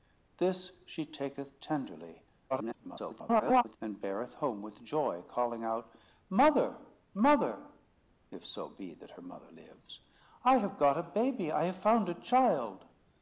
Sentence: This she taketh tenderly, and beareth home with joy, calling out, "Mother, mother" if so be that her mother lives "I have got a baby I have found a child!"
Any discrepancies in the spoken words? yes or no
yes